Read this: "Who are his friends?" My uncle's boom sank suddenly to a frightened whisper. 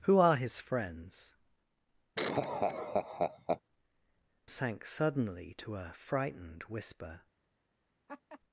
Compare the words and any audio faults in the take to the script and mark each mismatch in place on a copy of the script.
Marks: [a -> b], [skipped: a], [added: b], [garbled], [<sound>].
"Who are his friends?" [skipped: My uncle's boom] [laugh] sank suddenly to a frightened whisper. [laugh]